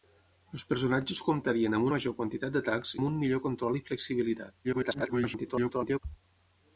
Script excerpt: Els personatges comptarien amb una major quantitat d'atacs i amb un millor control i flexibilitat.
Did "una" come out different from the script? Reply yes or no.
yes